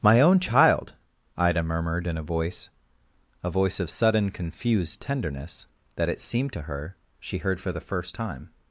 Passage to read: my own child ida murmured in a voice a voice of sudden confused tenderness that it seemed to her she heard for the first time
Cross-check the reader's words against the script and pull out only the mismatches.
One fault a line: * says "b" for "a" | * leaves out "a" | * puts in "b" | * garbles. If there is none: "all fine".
all fine